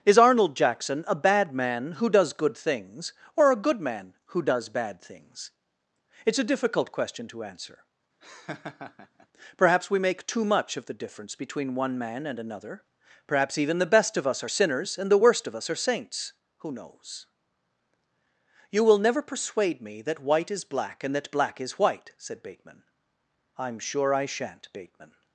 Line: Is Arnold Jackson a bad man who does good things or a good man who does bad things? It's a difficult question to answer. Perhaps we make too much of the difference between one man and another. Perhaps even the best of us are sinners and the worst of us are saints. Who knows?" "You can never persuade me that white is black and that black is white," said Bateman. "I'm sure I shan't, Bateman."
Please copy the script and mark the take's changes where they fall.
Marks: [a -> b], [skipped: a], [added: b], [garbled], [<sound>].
Is Arnold Jackson a bad man who does good things or a good man who does bad things? It's a difficult question to answer. [laugh] Perhaps we make too much of the difference between one man and another. Perhaps even the best of us are sinners and the worst of us are saints. Who knows?" "You [can -> will] never persuade me that white is black and that black is white," said Bateman. "I'm sure I shan't, Bateman."